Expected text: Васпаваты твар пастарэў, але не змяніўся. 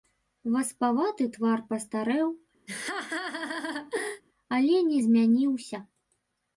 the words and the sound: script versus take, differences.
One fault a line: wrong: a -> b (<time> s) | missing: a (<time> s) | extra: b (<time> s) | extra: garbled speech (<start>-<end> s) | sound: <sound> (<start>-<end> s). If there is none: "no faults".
sound: laugh (2.7-4.2 s)